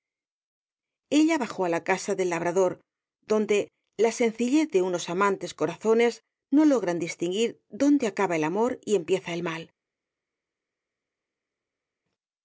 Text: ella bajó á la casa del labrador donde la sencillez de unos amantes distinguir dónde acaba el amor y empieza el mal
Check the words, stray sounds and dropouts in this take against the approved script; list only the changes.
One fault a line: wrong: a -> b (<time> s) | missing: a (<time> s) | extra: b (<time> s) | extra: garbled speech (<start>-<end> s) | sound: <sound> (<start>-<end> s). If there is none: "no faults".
extra: corazones no logran (5.5 s)